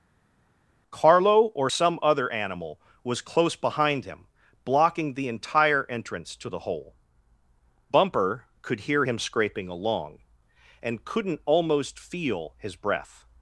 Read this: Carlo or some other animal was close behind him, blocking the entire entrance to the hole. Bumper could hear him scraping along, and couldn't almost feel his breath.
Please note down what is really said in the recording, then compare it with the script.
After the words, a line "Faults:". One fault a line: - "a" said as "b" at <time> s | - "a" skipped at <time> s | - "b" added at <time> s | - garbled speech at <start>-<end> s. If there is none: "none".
Carlo or some other animal was close behind him, blocking the entire entrance to the hole. Bumper could hear him scraping along, and couldn't almost feel his breath.
Faults:
none